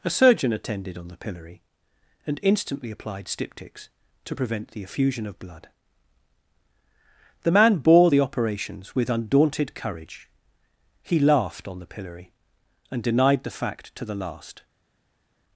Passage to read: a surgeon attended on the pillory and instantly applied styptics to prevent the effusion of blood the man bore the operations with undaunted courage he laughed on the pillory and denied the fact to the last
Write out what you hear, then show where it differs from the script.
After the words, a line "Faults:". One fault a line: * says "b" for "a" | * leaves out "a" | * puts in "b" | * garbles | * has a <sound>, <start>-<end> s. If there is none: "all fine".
a surgeon attended on the pillory and instantly applied styptics to prevent the effusion of blood the man bore the operations with undaunted courage he laughed on the pillory and denied the fact to the last
Faults:
all fine